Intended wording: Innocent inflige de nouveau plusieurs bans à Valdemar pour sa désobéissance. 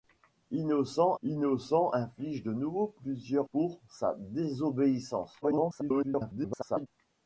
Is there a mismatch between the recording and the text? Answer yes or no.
yes